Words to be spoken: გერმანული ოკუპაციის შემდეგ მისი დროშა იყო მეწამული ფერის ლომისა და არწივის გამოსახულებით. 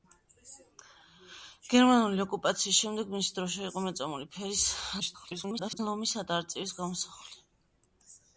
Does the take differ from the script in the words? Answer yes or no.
yes